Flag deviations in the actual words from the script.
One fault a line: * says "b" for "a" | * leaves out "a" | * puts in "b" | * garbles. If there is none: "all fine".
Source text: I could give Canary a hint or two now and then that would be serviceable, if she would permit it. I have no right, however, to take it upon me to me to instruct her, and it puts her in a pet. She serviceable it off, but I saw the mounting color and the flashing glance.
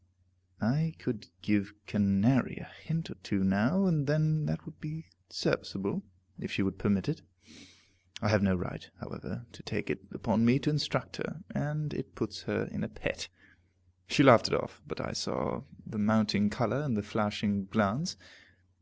* leaves out "me to"
* says "laughed" for "serviceable"